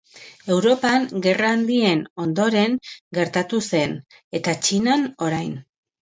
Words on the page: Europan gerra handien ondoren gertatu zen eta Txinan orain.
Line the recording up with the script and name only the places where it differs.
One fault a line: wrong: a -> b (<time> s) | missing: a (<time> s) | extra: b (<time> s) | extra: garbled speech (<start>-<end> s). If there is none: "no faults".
no faults